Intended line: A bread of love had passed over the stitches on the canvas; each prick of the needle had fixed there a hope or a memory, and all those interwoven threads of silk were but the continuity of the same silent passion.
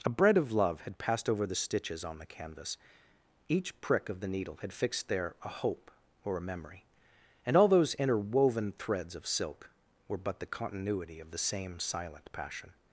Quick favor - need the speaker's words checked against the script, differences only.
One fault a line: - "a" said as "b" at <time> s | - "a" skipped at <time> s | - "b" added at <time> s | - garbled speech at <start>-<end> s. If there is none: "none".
none